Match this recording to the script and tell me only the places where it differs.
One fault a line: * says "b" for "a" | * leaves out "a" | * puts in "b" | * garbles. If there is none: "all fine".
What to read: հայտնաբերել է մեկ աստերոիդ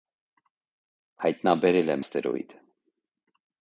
* leaves out "մեկ"